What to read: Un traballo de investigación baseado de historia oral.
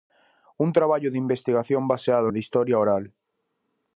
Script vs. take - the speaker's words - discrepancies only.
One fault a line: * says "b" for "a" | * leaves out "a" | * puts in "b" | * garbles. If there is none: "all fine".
all fine